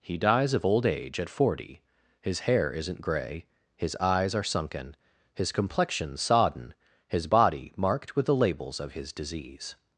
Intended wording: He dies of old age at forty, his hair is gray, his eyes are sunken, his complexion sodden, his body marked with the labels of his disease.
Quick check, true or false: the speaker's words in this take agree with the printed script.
false